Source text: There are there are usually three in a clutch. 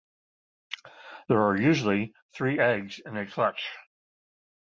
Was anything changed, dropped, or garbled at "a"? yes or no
no